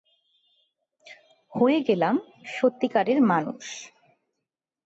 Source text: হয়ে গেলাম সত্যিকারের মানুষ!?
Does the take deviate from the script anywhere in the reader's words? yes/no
no